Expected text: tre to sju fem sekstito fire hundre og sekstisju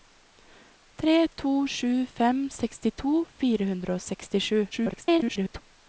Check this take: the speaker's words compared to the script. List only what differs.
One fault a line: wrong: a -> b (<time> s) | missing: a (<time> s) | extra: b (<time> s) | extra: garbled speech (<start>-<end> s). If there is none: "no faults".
extra: garbled speech (4.7-5.6 s)